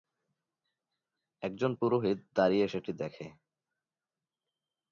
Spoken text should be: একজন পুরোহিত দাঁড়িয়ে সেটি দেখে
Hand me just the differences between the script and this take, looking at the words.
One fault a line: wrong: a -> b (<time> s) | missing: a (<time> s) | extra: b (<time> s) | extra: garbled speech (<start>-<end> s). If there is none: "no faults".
no faults